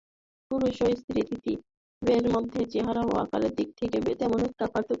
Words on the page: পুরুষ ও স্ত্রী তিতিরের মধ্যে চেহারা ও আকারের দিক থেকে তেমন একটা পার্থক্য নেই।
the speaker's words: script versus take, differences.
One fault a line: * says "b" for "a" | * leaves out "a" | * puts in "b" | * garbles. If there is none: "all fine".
all fine